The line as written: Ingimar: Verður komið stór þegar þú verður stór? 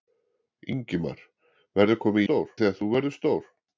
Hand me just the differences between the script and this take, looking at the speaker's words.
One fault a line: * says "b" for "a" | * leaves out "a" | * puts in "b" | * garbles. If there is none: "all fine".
all fine